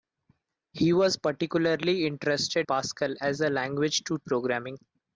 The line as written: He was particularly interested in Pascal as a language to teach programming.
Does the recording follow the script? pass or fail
fail